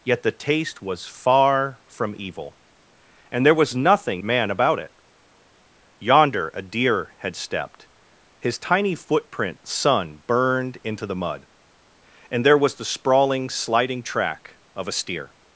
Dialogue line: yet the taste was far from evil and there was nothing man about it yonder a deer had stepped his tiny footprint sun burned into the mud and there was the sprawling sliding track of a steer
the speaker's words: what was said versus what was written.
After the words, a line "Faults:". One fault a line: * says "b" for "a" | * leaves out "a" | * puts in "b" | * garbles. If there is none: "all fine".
yet the taste was far from evil and there was nothing man about it yonder a deer had stepped his tiny footprint sun burned into the mud and there was the sprawling sliding track of a steer
Faults:
all fine